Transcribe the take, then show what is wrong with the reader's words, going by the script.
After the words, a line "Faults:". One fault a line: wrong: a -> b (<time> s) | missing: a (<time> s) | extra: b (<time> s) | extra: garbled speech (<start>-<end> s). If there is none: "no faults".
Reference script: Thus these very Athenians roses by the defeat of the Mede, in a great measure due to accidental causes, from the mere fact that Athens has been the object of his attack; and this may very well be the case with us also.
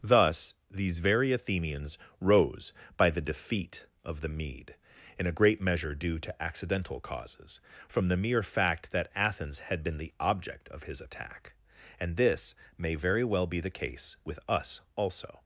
Thus these very Athenians rose by the defeat of the Mede, in a great measure due to accidental causes, from the mere fact that Athens had been the object of his attack; and this may very well be the case with us also.
Faults:
wrong: roses -> rose (2.2 s)
wrong: has -> had (9.6 s)